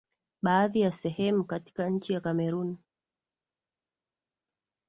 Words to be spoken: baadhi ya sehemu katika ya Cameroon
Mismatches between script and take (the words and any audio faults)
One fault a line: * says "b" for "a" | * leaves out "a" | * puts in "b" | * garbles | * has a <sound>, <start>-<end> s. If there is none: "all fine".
* puts in "nchi"